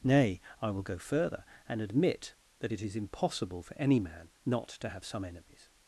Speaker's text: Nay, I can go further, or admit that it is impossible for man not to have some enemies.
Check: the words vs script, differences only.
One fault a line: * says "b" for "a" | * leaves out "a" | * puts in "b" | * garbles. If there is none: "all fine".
* says "will" for "can"
* says "and" for "or"
* puts in "any"